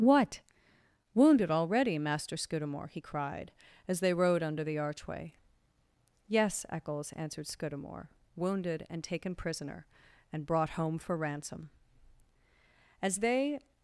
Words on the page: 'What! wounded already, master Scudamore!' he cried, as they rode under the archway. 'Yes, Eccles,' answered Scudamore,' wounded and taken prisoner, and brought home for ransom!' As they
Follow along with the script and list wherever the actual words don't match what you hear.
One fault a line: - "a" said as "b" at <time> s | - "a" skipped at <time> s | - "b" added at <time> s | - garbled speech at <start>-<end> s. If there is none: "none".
none